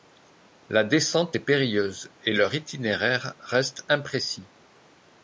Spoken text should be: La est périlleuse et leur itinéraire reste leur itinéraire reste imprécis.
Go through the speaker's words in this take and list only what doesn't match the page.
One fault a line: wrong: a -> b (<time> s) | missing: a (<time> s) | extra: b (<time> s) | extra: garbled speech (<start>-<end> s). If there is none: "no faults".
extra: descente (0.8 s)
missing: leur itinéraire reste (3.8 s)